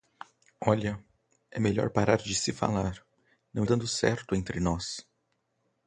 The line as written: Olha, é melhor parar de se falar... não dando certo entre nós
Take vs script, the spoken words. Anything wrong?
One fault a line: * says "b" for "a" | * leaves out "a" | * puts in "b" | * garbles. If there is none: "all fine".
all fine